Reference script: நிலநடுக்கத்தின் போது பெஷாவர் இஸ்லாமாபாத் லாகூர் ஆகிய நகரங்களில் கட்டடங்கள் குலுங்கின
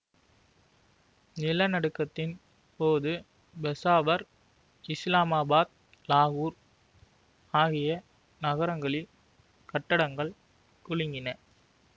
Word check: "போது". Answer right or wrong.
right